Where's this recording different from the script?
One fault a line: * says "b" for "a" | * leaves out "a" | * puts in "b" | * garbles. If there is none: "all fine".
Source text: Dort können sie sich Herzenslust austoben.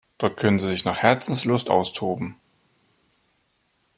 * puts in "nach"